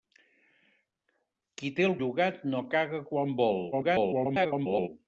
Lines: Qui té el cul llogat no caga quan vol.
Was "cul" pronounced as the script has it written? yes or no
no